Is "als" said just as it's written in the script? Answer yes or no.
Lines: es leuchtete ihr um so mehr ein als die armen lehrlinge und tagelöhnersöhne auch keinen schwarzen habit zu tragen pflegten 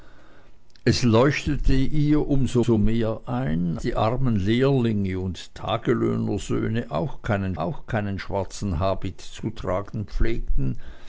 no